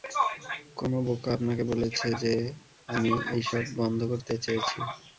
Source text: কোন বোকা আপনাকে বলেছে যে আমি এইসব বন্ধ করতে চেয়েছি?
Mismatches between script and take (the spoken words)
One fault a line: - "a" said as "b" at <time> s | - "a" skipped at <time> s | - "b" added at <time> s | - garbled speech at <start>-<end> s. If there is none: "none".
none